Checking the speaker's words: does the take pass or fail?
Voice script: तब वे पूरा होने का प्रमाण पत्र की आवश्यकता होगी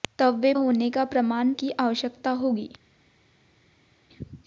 fail